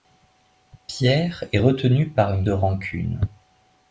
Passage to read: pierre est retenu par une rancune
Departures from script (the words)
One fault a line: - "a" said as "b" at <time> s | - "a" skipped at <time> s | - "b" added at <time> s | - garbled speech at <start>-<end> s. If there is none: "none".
none